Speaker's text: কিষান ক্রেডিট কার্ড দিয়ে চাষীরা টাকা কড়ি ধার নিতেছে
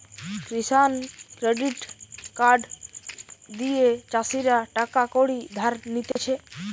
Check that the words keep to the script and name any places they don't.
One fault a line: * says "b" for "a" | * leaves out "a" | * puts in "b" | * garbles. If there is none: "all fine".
all fine